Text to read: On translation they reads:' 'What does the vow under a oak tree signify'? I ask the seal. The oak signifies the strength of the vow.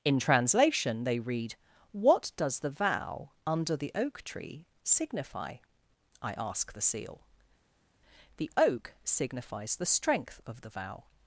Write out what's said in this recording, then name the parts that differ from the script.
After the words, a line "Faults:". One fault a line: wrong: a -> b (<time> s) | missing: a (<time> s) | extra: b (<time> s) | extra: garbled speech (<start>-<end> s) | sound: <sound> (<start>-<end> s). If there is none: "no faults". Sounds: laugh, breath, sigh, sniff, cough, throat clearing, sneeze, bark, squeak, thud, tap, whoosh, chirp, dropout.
In translation they read:' 'What does the vow under the oak tree signify'? I ask the seal. The oak signifies the strength of the vow.
Faults:
wrong: On -> In (0.0 s)
wrong: reads -> read (1.2 s)
wrong: a -> the (3.8 s)